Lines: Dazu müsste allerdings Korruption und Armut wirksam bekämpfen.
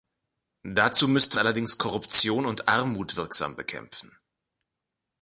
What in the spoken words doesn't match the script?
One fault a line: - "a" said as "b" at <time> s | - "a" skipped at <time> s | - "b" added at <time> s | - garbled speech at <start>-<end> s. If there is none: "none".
none